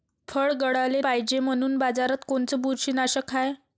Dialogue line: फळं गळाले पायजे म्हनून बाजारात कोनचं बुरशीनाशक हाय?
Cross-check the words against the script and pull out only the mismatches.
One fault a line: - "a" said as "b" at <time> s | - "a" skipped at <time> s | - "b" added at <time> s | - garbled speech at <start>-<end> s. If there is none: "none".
none